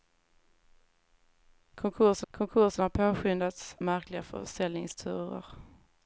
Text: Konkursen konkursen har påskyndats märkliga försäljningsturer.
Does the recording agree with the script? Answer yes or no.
yes